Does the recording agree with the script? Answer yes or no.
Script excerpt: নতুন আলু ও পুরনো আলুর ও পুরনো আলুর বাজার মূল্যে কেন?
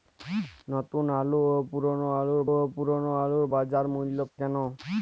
yes